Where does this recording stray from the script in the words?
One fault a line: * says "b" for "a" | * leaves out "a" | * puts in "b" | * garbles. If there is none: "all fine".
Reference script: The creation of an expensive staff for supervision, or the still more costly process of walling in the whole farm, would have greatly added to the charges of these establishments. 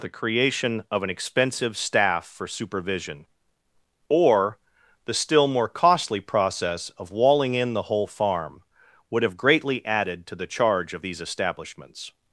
* says "charge" for "charges"